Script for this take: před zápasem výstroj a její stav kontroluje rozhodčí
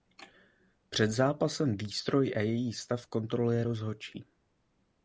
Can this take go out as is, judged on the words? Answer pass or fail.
pass